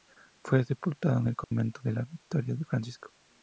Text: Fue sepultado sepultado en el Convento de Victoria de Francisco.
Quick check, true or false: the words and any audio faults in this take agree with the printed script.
false